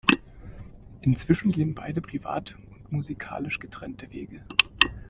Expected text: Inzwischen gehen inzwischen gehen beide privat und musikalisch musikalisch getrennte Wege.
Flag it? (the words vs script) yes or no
yes